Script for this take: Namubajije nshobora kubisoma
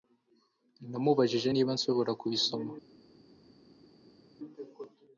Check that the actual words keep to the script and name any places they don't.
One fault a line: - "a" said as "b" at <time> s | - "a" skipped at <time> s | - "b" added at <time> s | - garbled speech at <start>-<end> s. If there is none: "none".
- "niba" added at 1.5 s